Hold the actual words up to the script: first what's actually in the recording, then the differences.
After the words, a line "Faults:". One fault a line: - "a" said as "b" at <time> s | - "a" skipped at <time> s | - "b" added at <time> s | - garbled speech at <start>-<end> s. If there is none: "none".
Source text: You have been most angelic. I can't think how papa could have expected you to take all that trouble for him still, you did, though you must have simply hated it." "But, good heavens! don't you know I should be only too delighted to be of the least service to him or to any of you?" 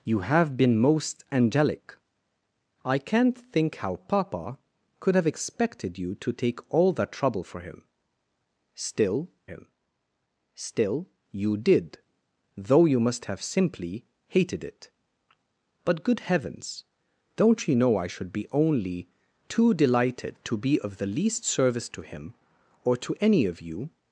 You have been most angelic. I can't think how papa could have expected you to take all that trouble for him still him still, you did, though you must have simply hated it." "But, good heavens! don't you know I should be only too delighted to be of the least service to him or to any of you?"
Faults:
- "him still" added at 9.5 s